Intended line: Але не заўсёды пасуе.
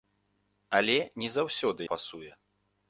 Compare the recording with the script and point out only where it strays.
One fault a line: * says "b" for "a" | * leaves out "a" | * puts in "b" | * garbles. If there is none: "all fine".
all fine